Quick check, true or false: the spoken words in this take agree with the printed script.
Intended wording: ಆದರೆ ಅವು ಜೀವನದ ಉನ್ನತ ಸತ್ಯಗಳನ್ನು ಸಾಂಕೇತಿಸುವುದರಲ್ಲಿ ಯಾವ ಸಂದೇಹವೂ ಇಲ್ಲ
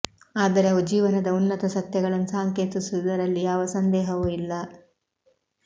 true